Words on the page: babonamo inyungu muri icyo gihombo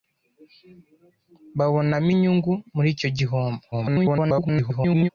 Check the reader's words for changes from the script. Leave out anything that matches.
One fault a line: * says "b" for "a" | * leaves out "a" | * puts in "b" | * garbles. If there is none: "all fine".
* garbles